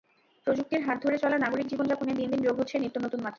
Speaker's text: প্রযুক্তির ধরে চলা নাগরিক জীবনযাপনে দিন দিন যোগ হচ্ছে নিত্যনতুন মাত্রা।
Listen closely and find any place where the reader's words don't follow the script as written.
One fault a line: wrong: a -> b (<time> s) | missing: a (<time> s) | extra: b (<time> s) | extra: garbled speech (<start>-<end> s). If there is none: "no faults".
extra: হাত (0.8 s)